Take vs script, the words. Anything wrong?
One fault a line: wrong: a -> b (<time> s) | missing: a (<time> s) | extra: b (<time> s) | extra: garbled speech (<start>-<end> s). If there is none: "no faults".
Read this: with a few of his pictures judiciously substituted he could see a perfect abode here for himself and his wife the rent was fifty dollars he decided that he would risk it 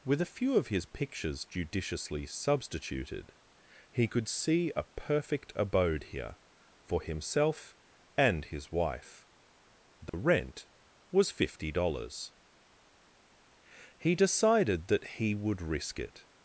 no faults